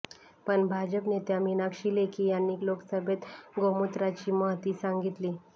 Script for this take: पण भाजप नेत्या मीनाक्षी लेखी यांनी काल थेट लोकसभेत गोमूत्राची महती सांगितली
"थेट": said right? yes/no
no